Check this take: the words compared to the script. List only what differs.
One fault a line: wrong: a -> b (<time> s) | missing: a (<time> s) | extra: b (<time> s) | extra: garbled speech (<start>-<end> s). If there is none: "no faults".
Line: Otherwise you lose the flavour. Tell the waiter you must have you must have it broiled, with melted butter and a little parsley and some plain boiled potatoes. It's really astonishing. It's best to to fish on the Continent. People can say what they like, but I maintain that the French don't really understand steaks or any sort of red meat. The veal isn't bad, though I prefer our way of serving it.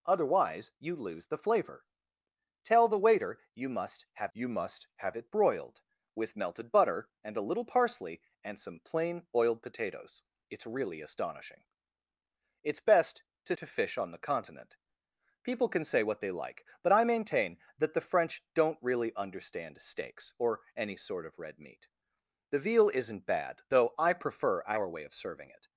no faults